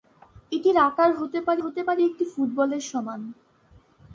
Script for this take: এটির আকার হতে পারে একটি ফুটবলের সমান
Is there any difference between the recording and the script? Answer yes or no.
yes